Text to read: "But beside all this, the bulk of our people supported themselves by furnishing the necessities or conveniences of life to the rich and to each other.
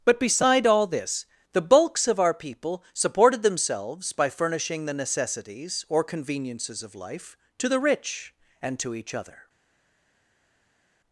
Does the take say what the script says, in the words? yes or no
no